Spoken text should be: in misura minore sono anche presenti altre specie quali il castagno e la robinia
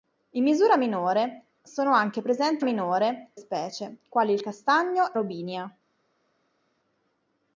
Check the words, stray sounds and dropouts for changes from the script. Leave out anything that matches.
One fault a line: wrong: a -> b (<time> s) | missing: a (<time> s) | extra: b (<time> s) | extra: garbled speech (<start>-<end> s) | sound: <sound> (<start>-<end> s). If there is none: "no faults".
wrong: altre -> minore (2.6 s)
missing: la (5.2 s)